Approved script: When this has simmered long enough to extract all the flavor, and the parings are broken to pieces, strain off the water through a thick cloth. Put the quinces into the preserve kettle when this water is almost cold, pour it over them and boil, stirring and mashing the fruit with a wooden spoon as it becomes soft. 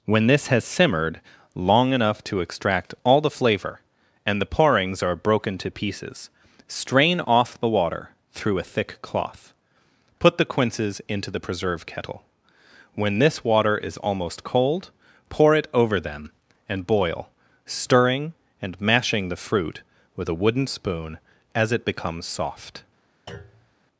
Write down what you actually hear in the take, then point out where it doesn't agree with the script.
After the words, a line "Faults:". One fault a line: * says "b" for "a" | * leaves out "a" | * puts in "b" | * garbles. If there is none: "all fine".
When this has simmered long enough to extract all the flavor, and the parings are broken to pieces, strain off the water through a thick cloth. Put the quinces into the preserve kettle when this water is almost cold, pour it over them and boil, stirring and mashing the fruit with a wooden spoon as it becomes soft.
Faults:
all fine